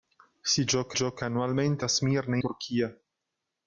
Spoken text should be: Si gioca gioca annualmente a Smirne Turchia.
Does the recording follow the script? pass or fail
pass